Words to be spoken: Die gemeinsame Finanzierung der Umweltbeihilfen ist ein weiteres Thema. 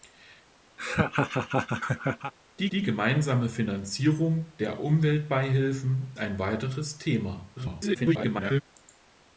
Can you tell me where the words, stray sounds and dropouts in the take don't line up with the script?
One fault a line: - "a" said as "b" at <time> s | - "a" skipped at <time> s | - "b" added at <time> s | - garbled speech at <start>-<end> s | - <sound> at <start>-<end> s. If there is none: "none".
- laugh at 0.8-2.3 s
- "die" added at 2.7 s
- "ist" skipped at 6.1 s
- garbled speech at 7.6-8.6 s